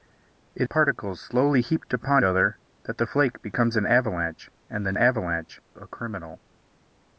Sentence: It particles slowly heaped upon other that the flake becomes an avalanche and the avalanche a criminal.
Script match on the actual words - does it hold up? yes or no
yes